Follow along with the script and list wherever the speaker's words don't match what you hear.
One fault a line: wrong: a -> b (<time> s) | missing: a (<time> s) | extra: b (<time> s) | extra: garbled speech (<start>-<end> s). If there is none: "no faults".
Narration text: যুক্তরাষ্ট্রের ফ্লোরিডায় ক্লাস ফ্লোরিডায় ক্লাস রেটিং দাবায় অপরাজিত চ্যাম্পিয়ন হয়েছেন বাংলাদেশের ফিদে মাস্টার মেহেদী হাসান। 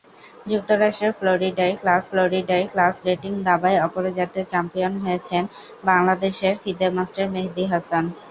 no faults